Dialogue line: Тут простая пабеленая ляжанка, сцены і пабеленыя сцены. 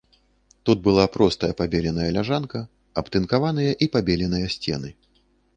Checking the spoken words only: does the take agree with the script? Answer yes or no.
no